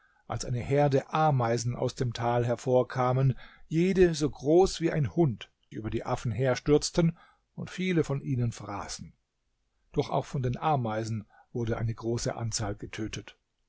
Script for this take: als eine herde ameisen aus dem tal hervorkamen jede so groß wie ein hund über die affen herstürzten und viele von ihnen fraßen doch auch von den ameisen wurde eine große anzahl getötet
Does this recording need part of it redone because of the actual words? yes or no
no